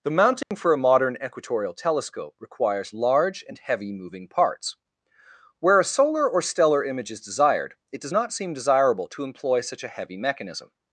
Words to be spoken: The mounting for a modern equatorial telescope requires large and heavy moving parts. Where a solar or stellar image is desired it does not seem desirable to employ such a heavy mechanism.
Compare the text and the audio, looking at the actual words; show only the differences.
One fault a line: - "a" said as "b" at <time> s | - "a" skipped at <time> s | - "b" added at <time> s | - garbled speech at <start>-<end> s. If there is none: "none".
none